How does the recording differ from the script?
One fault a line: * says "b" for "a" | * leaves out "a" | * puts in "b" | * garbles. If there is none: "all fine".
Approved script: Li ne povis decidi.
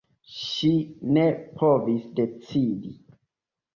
* says "Ŝi" for "Li"